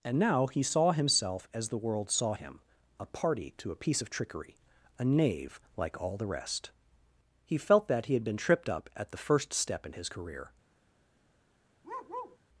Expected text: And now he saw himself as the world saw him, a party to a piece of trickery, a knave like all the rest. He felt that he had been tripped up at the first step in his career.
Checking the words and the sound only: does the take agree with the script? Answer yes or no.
no